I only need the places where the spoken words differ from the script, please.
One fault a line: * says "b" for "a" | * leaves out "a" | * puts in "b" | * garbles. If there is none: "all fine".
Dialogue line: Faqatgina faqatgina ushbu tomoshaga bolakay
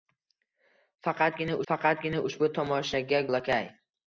all fine